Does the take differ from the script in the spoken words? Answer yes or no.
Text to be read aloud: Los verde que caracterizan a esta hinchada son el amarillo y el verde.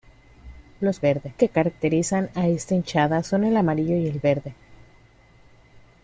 no